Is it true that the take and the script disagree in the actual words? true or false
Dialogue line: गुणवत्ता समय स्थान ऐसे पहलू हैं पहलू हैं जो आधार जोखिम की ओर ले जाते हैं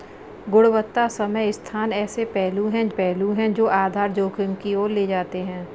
false